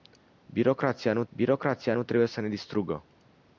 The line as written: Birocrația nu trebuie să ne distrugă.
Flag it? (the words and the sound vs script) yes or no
yes